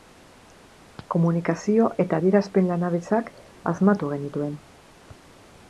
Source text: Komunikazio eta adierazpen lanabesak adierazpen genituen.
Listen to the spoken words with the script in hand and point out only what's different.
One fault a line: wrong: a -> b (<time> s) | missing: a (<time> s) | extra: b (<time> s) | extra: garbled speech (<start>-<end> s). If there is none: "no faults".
wrong: adierazpen -> asmatu (3.7 s)